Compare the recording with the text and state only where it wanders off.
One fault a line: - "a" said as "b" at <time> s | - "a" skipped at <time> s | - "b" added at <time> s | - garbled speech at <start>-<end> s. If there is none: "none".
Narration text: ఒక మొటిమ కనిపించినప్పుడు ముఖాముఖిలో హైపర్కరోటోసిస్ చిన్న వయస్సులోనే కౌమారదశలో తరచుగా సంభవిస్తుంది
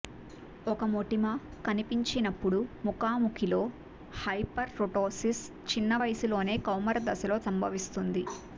- "తరచుగా" skipped at 7.4 s